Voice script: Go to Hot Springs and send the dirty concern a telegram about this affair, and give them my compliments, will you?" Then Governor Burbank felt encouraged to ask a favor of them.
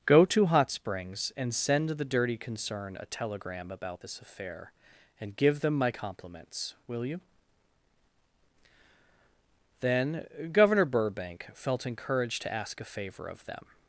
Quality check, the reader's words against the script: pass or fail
pass